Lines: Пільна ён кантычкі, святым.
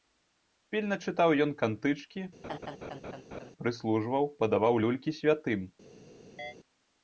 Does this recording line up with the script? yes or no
no